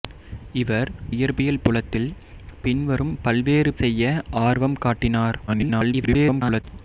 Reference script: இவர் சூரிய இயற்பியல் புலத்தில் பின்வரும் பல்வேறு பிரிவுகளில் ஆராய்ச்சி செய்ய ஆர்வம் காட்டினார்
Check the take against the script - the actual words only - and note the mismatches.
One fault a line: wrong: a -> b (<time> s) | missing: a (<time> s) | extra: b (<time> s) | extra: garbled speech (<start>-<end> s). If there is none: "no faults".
missing: சூரிய (0.9 s)
missing: பிரிவுகளில் ஆராய்ச்சி (3.7 s)
extra: garbled speech (5.5-6.6 s)